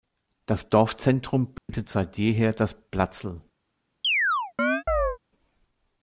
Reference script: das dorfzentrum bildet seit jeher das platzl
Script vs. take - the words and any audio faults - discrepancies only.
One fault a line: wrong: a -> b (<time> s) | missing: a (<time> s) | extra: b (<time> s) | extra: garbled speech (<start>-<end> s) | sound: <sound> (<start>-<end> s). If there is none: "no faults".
sound: dropout (1.6-1.7 s)
sound: chirp (4.0-5.2 s)